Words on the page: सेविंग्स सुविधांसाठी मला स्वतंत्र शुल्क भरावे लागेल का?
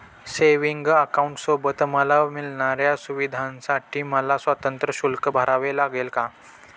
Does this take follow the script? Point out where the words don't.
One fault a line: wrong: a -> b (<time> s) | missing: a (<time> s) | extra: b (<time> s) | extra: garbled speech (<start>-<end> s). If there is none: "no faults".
extra: अकाउंटसोबत मला मिळणाऱ्या (0.9 s)